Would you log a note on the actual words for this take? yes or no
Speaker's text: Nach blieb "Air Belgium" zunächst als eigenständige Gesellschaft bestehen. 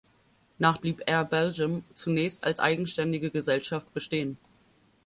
no